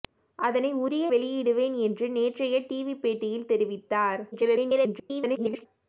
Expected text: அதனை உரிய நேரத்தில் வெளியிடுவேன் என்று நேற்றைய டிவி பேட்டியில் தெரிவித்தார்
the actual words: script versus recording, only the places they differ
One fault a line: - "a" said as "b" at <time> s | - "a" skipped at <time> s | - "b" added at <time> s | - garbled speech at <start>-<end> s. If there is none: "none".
- "நேரத்தில்" skipped at 1.1 s
- garbled speech at 4.3-5.7 s